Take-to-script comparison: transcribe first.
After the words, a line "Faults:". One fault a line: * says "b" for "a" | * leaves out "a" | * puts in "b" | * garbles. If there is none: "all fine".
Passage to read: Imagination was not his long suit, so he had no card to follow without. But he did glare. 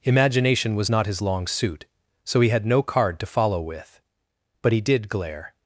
Imagination was not his long suit, so he had no card to follow with. But he did glare.
Faults:
* says "with" for "without"